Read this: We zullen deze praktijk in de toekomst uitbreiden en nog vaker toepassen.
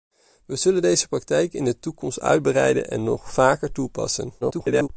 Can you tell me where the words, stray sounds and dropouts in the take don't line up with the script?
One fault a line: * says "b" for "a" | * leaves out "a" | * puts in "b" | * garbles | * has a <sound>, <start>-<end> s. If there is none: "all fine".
* garbles